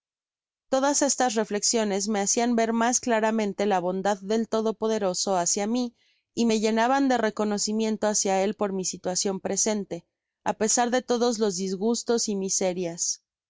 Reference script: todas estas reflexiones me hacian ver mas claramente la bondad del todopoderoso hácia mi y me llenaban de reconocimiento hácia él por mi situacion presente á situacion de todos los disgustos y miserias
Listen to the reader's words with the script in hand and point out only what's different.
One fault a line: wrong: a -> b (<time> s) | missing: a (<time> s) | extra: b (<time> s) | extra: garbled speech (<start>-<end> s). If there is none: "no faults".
wrong: situacion -> pesar (10.5 s)